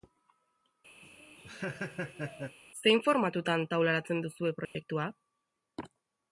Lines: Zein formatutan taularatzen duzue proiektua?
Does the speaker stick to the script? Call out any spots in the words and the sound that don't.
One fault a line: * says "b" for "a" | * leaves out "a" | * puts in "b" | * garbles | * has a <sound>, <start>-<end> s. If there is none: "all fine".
* has a laugh, 1.0-2.6 s
* has a dropout, 4.6-4.8 s